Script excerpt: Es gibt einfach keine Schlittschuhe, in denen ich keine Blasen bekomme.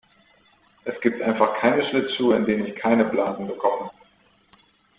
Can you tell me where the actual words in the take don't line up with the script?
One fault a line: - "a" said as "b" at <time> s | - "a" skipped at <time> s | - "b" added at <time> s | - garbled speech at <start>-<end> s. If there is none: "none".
none